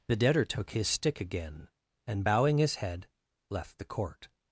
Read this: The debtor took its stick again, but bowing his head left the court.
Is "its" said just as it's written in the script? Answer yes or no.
no